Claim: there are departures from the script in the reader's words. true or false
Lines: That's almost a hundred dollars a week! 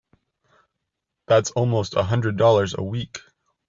false